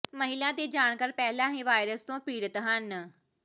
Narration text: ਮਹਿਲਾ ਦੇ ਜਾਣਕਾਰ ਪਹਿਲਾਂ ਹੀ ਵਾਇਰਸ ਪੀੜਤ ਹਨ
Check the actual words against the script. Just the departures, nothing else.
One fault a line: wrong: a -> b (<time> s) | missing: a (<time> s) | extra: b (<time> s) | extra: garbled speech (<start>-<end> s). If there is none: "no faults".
extra: ਤੋਂ (2.0 s)